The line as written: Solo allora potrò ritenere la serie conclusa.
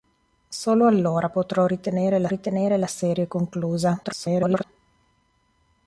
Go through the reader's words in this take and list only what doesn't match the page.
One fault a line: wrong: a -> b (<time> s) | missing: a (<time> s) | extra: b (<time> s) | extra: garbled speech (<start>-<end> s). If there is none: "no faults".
extra: ritenere la (2.3 s)
extra: garbled speech (4.0-4.6 s)